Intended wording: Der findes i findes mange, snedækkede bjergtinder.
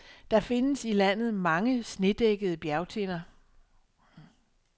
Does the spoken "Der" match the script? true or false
true